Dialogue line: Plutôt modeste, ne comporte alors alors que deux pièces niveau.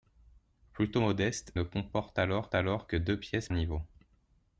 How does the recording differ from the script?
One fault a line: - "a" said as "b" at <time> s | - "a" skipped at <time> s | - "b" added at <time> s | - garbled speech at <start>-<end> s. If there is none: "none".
none